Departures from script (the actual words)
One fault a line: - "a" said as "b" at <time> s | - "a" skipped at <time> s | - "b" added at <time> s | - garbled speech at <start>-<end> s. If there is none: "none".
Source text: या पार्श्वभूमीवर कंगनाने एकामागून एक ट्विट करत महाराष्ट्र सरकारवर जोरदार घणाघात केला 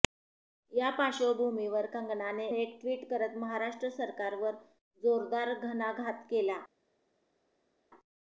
- "एकामागून" skipped at 2.5 s